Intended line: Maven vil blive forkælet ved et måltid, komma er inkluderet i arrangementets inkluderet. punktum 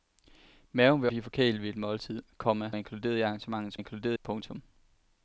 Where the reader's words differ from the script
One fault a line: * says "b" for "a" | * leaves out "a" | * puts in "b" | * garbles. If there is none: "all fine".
all fine